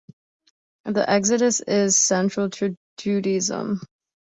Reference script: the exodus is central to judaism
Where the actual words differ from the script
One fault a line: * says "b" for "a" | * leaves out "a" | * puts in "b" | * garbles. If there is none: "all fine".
all fine